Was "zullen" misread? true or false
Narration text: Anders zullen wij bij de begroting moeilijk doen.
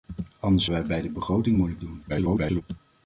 true